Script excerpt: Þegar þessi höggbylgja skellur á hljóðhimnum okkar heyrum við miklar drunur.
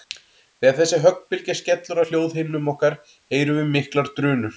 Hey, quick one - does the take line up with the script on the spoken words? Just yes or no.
yes